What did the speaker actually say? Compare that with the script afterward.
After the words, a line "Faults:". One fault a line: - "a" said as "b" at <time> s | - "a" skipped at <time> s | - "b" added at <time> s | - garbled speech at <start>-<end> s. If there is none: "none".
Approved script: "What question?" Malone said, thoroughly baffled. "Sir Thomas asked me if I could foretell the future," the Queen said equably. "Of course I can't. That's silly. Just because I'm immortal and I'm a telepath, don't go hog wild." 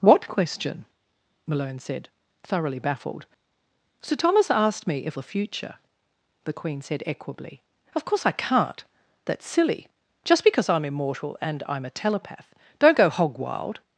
"What question?" Malone said, thoroughly baffled. "Sir Thomas asked me if the future," the Queen said equably. "Of course I can't. That's silly. Just because I'm immortal and I'm a telepath, don't go hog wild."
Faults:
- "I could foretell" skipped at 5.2 s